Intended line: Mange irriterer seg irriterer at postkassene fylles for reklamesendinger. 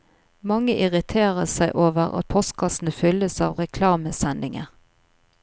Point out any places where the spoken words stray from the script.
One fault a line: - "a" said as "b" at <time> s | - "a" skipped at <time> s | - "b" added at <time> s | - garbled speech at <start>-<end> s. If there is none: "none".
- "irriterer" said as "over" at 1.9 s
- "for" said as "av" at 3.5 s